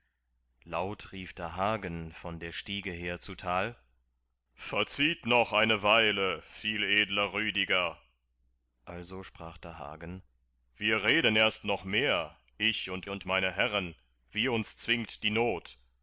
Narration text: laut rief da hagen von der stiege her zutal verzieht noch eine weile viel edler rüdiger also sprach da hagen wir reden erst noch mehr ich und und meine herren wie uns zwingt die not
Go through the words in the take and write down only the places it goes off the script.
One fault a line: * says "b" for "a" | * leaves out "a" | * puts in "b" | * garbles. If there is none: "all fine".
all fine